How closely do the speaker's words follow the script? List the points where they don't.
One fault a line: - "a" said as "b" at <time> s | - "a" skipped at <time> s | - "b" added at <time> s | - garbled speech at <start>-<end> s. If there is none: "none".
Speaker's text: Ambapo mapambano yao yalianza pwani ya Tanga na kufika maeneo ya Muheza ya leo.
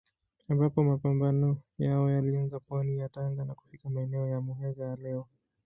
none